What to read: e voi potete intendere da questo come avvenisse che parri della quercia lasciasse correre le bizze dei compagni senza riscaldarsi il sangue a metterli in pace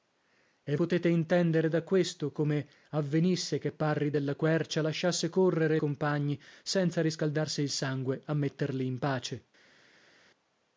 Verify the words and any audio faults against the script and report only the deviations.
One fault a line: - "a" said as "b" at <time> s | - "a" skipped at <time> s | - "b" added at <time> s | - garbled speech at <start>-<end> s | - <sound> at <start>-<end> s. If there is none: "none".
- "voi" skipped at 0.8 s
- "le bizze dei" skipped at 5.8 s